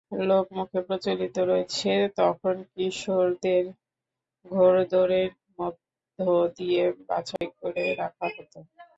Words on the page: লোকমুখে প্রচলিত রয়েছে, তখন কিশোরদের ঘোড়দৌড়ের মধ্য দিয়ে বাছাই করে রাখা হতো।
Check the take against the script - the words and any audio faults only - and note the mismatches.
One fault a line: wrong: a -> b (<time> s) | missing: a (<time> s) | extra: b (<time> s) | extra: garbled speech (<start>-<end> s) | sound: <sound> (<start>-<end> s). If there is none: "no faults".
sound: dropout (7.4-7.4 s)